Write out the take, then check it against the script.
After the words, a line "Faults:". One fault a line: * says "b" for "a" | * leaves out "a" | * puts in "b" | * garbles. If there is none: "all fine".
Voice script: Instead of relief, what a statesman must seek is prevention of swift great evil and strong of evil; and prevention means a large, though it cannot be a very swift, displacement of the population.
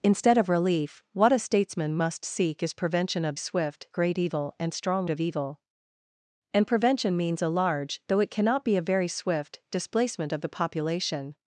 Instead of relief, what a statesman must seek is prevention of swift great evil and strong of evil; and prevention means a large, though it cannot be a very swift, displacement of the population.
Faults:
all fine